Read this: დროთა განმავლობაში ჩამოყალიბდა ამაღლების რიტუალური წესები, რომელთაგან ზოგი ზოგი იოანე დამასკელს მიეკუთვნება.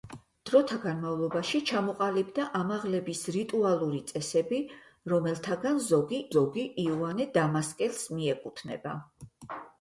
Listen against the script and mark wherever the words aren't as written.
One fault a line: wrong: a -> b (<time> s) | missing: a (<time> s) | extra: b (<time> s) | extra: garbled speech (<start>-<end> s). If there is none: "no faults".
no faults